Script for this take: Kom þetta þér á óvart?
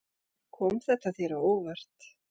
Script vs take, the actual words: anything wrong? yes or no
no